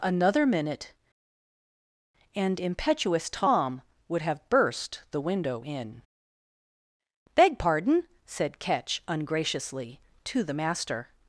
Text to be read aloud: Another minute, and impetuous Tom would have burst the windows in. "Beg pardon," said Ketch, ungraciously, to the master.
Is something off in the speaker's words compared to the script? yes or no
yes